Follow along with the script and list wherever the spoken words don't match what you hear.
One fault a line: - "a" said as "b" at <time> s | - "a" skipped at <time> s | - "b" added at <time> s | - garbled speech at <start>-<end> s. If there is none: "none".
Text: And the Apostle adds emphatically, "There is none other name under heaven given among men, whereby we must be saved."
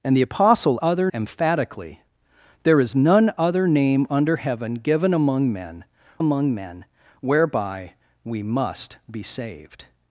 - "adds" said as "other" at 0.8 s
- "among men" added at 6.2 s